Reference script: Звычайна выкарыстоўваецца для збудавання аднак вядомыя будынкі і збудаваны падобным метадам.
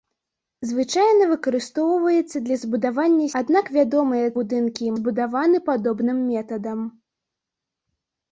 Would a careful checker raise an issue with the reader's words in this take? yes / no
no